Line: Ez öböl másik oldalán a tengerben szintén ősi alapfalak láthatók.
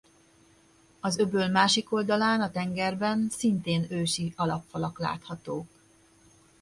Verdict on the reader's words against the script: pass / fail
fail